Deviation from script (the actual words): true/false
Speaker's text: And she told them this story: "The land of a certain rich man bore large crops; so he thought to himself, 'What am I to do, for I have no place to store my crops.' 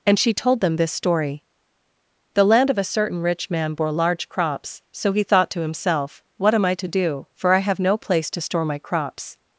false